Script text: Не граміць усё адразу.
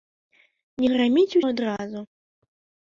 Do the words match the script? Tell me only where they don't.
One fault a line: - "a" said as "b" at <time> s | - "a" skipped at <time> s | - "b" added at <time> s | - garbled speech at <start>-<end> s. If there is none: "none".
- "усё" skipped at 1.4 s